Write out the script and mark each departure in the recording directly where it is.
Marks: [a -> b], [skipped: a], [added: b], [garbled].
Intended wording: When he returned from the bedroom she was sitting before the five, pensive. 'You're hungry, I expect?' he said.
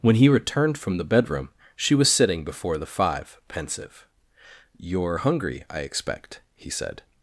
When he returned from the bedroom she was sitting before the five, pensive. 'You're hungry, I expect?' he said.